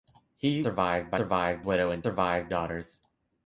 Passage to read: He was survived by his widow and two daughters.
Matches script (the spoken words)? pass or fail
fail